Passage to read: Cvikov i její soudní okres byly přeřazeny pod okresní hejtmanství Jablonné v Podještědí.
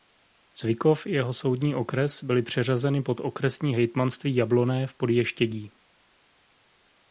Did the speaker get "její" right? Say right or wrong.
wrong